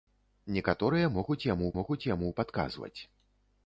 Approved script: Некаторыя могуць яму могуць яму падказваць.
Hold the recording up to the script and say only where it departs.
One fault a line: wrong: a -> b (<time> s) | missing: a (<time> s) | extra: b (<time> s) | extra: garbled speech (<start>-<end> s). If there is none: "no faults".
no faults